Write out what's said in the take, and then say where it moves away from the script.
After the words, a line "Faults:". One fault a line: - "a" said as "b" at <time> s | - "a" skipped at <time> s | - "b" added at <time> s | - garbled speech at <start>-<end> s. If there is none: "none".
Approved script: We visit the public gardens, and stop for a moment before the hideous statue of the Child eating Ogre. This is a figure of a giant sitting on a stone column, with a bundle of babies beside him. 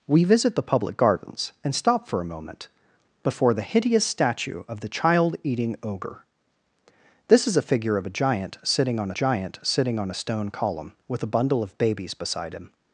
We visit the public gardens, and stop for a moment before the hideous statue of the Child eating Ogre. This is a figure of a giant sitting on giant sitting on a stone column, with a bundle of babies beside him.
Faults:
- "giant sitting on" added at 9.1 s